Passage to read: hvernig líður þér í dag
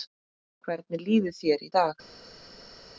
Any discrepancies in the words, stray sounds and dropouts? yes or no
no